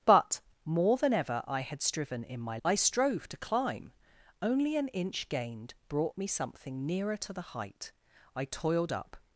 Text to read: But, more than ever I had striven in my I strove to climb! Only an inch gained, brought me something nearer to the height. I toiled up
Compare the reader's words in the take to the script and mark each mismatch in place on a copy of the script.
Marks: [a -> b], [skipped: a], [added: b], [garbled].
But, more than ever I had striven in my I strove to climb! Only an inch gained, brought me something nearer to the height. I toiled up